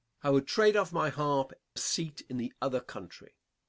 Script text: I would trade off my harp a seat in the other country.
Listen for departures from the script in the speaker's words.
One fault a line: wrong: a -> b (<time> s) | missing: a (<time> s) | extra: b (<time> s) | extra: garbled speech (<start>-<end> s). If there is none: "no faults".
no faults